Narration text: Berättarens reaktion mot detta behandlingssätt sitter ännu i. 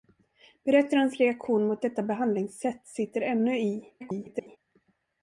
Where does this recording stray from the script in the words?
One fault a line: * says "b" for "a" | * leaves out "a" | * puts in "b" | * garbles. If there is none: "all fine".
* garbles